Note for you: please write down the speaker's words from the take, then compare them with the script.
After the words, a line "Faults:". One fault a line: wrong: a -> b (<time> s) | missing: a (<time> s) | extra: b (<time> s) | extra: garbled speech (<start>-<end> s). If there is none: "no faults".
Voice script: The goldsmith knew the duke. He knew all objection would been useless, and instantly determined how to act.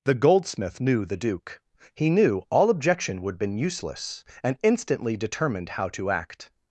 The goldsmith knew the duke. He knew all objection would been useless, and instantly determined how to act.
Faults:
no faults